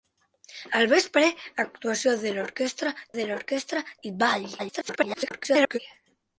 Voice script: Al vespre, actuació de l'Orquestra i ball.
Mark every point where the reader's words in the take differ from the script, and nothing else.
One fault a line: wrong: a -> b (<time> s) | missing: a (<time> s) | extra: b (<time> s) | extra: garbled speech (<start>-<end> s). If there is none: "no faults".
extra: de l'Orquestra (3.2 s)
extra: garbled speech (4.6-5.8 s)